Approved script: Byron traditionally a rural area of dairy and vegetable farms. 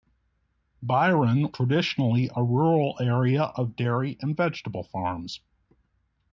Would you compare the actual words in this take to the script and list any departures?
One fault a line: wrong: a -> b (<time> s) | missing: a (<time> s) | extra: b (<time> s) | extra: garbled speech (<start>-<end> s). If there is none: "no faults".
no faults